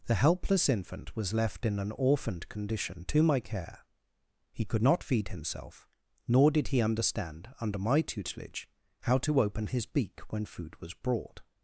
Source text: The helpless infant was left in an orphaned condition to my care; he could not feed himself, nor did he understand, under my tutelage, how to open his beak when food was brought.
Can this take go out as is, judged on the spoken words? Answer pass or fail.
pass